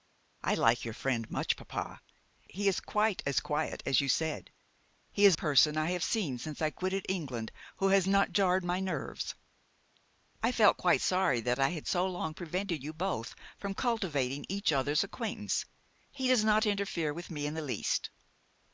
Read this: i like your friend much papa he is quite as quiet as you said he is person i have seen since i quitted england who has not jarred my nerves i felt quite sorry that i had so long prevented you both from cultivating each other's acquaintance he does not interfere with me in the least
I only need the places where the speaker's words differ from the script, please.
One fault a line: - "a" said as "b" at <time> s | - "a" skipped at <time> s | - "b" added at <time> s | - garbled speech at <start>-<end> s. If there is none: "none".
none